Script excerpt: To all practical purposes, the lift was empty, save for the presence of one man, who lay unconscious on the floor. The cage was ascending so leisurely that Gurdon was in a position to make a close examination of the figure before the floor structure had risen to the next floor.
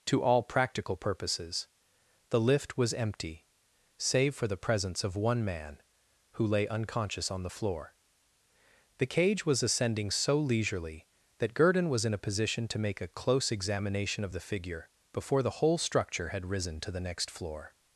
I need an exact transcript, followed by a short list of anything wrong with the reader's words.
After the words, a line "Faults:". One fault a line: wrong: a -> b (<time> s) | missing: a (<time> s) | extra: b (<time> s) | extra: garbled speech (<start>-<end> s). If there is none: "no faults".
To all practical purposes, the lift was empty, save for the presence of one man, who lay unconscious on the floor. The cage was ascending so leisurely that Gurdon was in a position to make a close examination of the figure before the whole structure had risen to the next floor.
Faults:
wrong: floor -> whole (15.6 s)